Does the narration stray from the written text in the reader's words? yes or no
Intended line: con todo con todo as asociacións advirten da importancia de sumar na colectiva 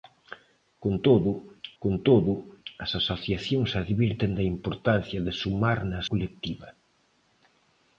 no